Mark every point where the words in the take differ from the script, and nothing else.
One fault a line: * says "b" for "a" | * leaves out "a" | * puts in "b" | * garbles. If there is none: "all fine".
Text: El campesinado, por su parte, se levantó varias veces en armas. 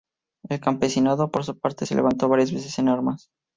all fine